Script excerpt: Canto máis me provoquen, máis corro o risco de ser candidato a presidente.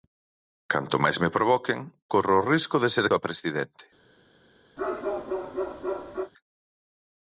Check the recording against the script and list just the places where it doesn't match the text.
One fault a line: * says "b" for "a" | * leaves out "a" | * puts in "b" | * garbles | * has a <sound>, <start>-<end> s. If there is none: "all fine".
* leaves out "máis"
* leaves out "candidato"
* has a bark, 4.8-6.3 s